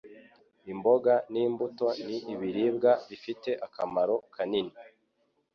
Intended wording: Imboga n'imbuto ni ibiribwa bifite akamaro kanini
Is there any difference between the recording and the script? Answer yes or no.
no